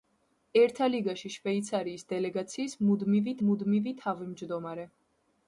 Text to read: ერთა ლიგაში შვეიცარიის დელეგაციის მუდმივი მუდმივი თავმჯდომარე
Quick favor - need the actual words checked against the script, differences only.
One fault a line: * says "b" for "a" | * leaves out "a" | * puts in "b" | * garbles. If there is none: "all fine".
all fine